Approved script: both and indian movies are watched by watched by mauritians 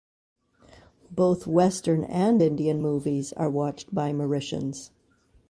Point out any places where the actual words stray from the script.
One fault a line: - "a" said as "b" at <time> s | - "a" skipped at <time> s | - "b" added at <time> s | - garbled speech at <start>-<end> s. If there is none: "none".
- "western" added at 1.4 s
- "watched by" skipped at 4.1 s